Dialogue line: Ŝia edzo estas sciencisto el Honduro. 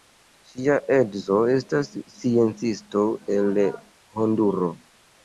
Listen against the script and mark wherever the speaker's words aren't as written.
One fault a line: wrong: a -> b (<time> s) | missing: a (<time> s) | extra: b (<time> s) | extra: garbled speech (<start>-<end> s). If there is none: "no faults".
no faults